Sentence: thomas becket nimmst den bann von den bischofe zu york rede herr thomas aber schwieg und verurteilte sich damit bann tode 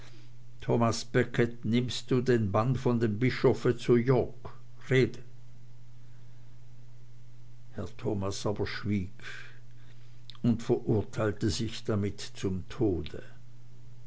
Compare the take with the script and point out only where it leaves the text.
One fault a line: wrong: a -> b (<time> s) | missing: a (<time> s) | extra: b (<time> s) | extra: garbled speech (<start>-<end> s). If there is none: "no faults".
extra: du (2.1 s)
wrong: den -> dem (3.0 s)
wrong: bann -> zum (12.2 s)